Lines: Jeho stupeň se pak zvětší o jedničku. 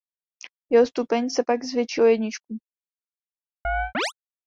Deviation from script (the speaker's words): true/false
false